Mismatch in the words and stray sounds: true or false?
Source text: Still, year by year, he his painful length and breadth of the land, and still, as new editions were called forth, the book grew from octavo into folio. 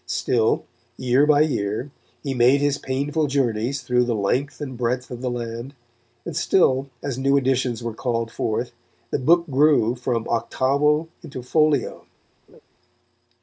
true